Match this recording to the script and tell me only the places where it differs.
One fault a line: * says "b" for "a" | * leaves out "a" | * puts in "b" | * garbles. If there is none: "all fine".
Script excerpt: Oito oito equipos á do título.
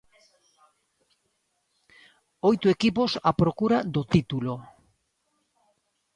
* leaves out "oito"
* puts in "procura"